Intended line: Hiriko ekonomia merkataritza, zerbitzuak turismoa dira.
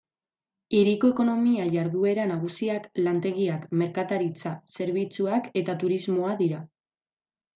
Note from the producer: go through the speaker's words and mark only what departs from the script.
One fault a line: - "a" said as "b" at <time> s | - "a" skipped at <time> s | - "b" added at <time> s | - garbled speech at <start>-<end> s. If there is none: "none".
- "jarduera nagusiak lantegiak" added at 1.7 s
- "eta" added at 5.6 s